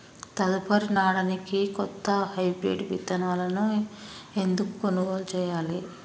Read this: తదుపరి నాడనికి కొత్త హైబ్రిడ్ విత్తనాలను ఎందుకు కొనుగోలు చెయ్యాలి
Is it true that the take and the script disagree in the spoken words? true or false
false